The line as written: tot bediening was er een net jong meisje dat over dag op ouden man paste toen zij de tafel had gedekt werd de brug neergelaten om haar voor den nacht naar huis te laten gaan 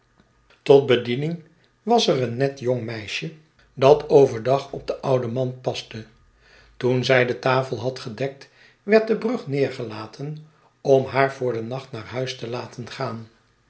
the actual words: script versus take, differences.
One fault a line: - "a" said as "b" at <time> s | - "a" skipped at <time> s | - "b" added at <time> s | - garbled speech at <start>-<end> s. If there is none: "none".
- "den" added at 4.9 s